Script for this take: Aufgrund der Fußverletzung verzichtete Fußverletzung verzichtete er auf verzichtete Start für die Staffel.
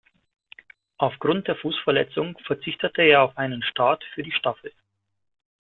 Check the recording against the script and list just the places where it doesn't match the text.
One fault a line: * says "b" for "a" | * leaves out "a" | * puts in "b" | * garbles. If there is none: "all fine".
* leaves out "Fußverletzung verzichtete"
* says "einen" for "verzichtete"